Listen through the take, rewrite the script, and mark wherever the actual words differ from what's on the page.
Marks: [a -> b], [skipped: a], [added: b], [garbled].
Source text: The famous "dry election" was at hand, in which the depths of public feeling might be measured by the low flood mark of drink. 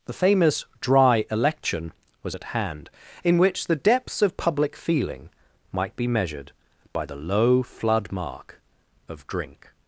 The famous "dry election" was at hand, in which the depths of public feeling might be measured by the low flood mark of drink.